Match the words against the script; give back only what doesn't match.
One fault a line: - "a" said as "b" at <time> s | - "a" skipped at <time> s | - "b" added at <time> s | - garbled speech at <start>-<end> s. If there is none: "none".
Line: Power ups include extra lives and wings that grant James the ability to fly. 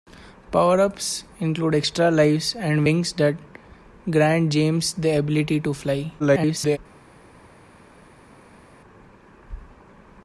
- garbled speech at 6.2-6.8 s